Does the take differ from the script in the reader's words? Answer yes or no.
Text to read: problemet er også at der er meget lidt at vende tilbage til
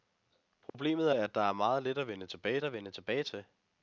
yes